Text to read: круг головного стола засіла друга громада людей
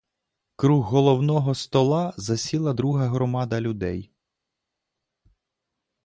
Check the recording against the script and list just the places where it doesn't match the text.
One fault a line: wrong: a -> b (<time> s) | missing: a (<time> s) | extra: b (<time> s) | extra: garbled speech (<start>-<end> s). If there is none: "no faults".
no faults